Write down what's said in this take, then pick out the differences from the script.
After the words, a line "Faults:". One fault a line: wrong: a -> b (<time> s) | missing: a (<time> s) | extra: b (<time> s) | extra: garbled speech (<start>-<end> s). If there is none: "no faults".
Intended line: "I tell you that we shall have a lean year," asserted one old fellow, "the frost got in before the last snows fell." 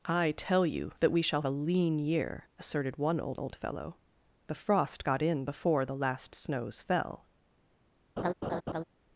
"I tell you that we shall a lean year," asserted one old old fellow, "the frost got in before the last snows fell."
Faults:
missing: have (1.4 s)
extra: old (3.4 s)